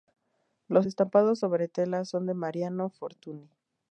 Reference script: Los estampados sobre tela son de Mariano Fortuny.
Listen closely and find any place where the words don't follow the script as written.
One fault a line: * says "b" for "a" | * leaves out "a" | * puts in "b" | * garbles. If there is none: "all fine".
all fine